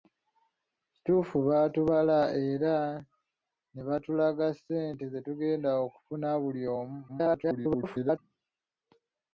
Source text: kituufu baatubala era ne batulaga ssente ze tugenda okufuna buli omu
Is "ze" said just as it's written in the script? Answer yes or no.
yes